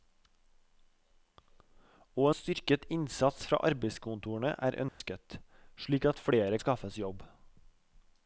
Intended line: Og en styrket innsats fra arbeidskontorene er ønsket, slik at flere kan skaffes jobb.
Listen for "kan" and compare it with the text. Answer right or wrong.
wrong